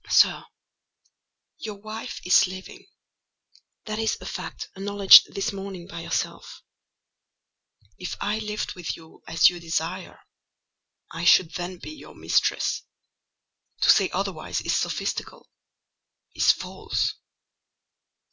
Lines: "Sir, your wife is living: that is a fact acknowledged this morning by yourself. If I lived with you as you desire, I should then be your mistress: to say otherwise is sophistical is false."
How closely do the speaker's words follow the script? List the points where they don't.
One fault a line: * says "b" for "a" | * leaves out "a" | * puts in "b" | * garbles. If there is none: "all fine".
all fine